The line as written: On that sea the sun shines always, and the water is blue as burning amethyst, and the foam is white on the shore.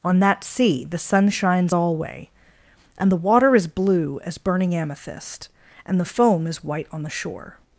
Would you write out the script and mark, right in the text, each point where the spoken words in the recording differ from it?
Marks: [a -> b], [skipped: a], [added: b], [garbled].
On that sea the sun shines [always, -> alway] and the water is blue as burning amethyst, and the foam is white on the shore.